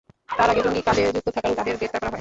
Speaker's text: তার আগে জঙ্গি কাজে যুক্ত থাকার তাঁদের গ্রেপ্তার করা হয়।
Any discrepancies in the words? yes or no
no